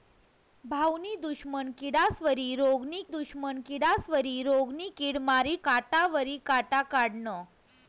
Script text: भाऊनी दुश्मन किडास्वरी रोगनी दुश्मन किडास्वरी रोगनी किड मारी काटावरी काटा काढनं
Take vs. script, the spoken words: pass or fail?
pass